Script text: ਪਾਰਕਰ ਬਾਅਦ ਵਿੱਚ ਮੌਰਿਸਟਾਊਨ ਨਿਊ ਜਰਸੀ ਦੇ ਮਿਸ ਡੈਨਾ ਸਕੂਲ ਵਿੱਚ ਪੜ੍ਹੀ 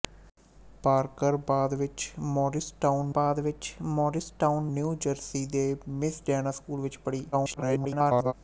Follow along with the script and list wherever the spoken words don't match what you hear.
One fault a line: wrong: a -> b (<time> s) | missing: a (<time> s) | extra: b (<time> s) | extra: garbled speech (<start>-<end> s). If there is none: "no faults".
extra: ਬਾਅਦ ਵਿੱਚ ਮੌਰਿਸਟਾਊਨ (3.1 s)
extra: garbled speech (7.3-8.3 s)